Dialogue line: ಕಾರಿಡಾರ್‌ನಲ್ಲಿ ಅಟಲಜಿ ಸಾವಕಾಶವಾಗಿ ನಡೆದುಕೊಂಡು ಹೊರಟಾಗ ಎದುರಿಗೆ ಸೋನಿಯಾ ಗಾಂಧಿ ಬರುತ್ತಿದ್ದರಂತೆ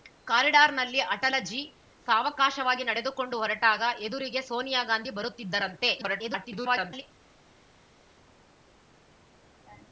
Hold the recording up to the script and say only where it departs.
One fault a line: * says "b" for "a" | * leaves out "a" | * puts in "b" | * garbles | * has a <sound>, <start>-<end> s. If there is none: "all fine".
* garbles